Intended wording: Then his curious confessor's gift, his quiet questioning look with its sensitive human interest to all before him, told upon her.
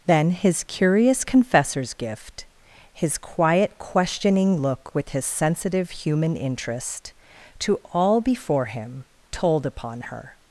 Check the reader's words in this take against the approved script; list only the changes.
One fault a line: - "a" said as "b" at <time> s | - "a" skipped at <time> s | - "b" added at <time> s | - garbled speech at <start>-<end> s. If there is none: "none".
- "its" said as "his" at 5.1 s